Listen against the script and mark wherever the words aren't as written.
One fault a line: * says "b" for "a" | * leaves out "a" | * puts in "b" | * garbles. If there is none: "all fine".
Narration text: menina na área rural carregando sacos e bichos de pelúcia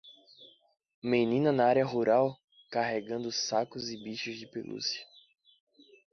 all fine